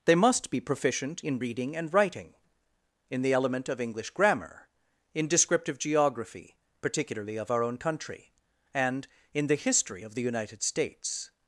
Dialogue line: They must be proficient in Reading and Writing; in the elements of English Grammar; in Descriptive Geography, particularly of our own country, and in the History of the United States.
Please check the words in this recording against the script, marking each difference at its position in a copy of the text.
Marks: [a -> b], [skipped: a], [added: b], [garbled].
They must be proficient in Reading and Writing; in the [elements -> element] of English Grammar; in Descriptive Geography, particularly of our own country, and in the History of the United States.